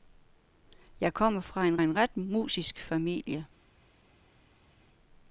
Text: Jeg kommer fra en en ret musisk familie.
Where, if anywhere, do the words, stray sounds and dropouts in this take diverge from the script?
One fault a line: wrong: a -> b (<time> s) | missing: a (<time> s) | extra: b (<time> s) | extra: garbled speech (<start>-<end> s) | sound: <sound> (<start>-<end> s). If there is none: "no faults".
no faults